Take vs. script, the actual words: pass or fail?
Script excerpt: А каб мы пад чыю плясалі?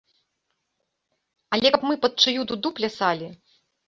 fail